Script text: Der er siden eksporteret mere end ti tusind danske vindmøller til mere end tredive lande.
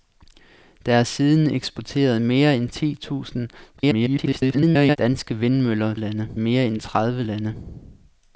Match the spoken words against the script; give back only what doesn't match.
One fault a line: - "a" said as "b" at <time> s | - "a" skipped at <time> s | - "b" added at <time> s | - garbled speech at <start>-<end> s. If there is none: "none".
- garbled speech at 3.8-5.0 s
- "til" said as "lande" at 6.0 s